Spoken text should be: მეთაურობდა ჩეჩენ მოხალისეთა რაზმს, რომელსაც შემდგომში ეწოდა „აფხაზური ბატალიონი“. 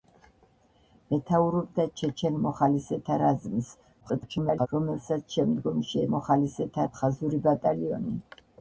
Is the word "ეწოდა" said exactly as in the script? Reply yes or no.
no